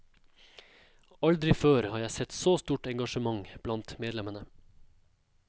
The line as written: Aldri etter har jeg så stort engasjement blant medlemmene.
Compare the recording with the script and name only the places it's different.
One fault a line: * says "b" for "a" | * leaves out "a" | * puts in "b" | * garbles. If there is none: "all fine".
* says "før" for "etter"
* puts in "sett"